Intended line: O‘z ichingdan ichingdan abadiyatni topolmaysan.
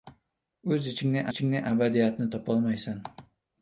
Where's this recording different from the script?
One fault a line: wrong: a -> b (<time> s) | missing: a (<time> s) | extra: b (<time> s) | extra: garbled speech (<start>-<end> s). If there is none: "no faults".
no faults